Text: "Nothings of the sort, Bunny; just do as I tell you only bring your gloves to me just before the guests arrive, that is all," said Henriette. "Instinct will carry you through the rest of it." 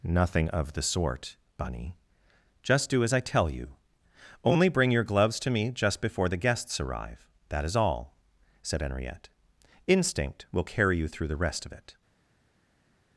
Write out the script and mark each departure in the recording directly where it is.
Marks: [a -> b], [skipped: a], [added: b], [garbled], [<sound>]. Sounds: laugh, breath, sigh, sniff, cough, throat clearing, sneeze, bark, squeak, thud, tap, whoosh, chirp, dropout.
["Nothings -> Nothing] of the sort, Bunny; just do as I tell you only bring your gloves to me just before the guests arrive, that is all," said Henriette. "Instinct will carry you through the rest of it."